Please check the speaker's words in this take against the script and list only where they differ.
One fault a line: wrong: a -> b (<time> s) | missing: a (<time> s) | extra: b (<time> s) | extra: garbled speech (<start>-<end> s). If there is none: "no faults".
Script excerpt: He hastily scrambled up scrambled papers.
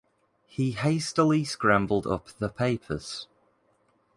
wrong: scrambled -> the (2.4 s)